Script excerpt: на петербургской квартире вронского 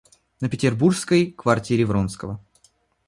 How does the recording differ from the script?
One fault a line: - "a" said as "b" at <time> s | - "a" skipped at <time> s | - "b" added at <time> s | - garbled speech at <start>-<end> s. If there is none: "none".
none